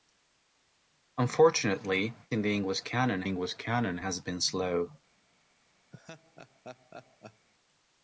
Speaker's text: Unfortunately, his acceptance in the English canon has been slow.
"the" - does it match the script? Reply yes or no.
no